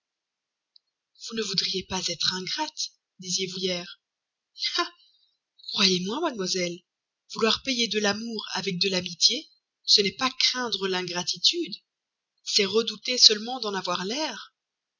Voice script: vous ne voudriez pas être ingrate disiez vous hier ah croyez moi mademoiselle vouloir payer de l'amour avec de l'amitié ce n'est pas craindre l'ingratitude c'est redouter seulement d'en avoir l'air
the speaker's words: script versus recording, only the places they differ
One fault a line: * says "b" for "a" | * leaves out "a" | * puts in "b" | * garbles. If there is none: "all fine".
all fine